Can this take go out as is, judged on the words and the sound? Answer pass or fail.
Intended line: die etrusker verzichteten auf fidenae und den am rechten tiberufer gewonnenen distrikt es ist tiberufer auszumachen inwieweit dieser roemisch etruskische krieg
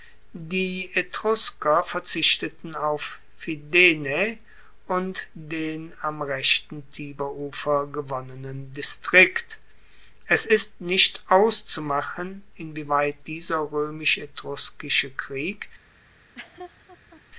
fail